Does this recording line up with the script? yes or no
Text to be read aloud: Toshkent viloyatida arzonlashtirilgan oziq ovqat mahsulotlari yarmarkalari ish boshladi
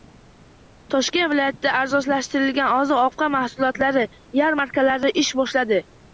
yes